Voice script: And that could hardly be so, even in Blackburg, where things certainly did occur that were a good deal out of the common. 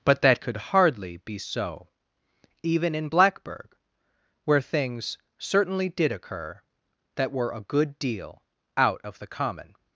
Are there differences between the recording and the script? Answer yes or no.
yes